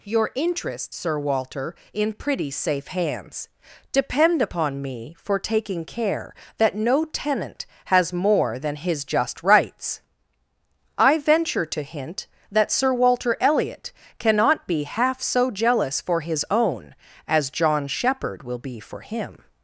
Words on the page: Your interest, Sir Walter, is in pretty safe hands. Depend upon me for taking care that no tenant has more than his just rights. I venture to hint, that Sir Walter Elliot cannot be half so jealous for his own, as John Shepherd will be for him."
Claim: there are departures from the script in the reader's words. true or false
true